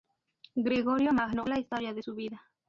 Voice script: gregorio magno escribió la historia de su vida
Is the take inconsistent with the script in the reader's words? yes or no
yes